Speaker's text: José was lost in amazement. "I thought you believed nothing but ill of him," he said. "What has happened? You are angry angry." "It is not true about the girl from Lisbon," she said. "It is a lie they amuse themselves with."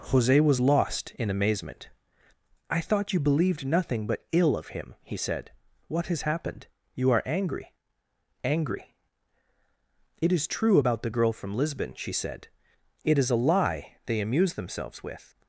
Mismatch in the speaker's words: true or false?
true